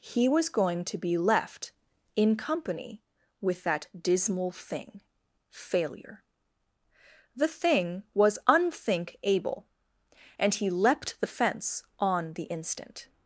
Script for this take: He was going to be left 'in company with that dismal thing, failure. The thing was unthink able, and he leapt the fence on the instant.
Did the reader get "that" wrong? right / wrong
right